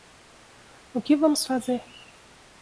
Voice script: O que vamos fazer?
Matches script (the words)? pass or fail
pass